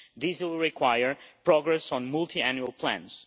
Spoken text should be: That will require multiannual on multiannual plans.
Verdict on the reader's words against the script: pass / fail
fail